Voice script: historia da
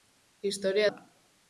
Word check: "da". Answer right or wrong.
right